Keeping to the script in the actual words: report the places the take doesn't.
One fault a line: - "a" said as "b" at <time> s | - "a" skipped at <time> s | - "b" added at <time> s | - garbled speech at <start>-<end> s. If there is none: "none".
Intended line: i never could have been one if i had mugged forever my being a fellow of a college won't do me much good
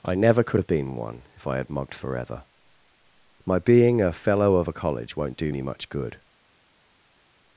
none